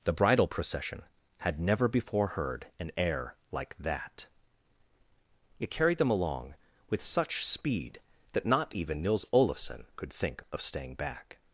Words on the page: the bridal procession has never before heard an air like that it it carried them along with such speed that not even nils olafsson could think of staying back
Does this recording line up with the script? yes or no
no